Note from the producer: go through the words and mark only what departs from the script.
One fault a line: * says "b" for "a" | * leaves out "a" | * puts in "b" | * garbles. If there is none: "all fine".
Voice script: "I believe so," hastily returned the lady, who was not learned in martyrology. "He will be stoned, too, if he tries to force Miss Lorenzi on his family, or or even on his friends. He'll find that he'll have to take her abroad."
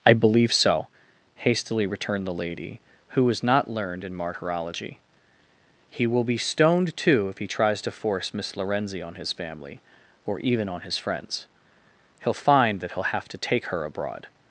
* leaves out "or"